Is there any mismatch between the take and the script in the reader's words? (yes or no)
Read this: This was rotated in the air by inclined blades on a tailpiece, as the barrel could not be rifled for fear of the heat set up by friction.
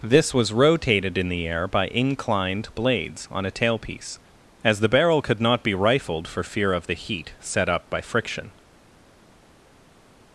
no